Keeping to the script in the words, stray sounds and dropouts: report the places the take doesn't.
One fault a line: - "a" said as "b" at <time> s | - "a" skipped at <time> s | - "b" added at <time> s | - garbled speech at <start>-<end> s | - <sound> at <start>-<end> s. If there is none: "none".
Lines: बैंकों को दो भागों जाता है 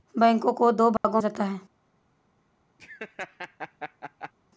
- dropout at 1.0-1.0 s
- laugh at 2.8-4.3 s